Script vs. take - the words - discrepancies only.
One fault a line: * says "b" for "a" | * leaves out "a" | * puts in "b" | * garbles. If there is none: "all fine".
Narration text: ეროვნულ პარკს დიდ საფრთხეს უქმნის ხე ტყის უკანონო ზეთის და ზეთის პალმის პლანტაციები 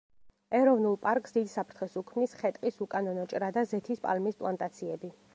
* says "ჭრა" for "ზეთის"